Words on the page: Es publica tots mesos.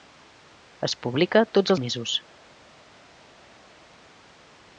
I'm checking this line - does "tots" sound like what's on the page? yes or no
yes